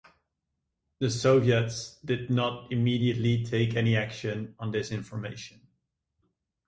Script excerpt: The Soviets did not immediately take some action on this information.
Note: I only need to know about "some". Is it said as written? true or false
false